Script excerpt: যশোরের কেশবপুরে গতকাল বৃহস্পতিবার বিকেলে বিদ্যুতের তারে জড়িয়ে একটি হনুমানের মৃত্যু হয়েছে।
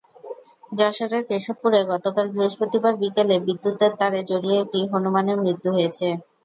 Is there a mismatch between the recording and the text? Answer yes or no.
no